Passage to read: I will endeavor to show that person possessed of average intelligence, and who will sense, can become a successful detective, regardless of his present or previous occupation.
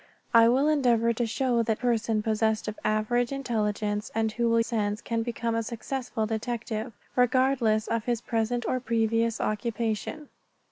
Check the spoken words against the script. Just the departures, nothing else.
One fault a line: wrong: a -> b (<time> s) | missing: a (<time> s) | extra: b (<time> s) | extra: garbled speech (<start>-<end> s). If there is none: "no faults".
no faults